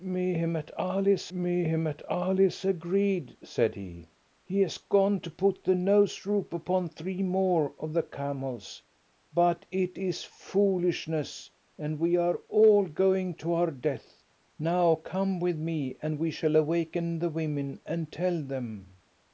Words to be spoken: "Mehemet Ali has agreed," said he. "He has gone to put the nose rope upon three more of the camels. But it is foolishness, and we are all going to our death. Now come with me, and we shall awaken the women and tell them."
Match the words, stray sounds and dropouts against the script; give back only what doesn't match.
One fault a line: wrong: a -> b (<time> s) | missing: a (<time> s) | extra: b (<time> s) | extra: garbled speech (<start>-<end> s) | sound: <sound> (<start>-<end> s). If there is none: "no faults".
extra: mehemet Ali has (1.3 s)